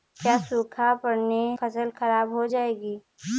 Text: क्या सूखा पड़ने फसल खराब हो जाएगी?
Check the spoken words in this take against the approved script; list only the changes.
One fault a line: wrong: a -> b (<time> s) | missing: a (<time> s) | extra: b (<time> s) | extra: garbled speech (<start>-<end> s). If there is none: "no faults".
no faults